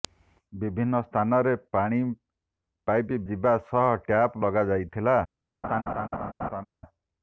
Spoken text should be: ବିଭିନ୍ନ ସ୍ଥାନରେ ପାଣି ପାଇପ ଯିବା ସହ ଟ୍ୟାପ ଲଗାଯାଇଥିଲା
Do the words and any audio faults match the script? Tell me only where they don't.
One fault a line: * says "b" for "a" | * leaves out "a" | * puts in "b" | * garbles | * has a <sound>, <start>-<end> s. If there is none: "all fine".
* has a laugh, 5.6-6.7 s